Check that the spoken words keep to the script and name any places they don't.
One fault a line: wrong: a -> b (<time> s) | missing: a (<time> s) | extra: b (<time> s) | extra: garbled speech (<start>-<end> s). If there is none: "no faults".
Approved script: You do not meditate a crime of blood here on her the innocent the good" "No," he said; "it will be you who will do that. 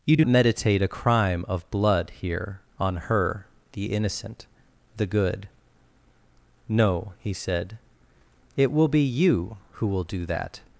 missing: not (0.2 s)